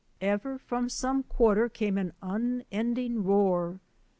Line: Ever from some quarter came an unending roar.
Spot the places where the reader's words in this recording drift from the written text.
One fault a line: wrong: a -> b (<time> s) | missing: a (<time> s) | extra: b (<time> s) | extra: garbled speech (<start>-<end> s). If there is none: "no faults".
no faults